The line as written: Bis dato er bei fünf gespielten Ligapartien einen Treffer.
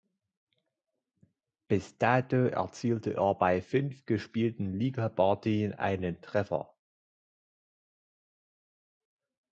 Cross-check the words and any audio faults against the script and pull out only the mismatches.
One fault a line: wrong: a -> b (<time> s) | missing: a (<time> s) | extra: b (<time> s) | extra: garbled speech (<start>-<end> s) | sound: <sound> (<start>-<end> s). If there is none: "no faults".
extra: erzielte (2.5 s)